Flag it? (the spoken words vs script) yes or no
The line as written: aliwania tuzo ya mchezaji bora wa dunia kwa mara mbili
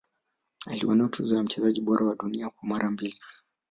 no